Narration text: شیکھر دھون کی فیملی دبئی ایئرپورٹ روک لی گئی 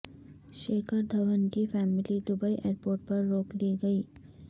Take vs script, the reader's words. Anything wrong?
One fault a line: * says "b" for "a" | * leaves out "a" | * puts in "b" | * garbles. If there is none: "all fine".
* puts in "پر"